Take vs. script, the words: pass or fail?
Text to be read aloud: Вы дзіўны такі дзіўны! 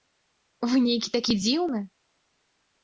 fail